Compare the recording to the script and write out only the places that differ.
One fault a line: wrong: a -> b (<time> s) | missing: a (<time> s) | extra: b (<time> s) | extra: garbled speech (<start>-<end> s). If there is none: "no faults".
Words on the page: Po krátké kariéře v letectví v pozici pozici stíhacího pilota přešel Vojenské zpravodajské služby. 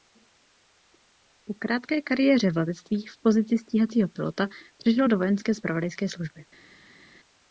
missing: pozici (3.6 s)
extra: do (5.1 s)